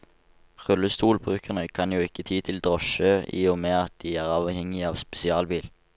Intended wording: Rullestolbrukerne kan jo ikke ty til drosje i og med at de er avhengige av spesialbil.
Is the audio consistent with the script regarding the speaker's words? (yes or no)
yes